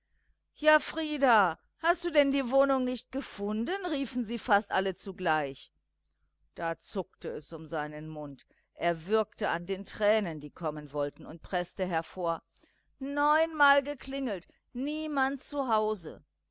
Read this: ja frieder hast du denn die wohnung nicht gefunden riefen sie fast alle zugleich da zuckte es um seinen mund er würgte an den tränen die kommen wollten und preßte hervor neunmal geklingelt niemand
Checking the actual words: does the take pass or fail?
pass